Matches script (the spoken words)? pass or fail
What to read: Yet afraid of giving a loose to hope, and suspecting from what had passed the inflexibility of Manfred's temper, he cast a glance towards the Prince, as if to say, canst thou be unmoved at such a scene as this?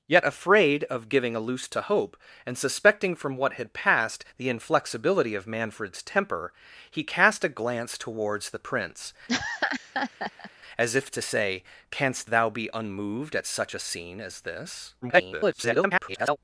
fail